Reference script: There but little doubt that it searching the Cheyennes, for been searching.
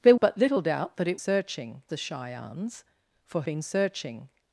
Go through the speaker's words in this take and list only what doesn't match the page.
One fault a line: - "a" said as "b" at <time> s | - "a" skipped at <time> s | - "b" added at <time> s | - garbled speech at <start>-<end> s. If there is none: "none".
none